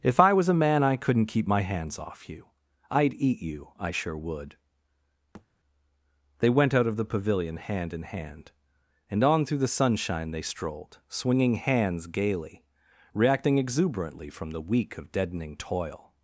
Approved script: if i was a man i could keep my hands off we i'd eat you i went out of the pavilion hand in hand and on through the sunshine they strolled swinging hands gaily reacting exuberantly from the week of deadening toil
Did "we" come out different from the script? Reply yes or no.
yes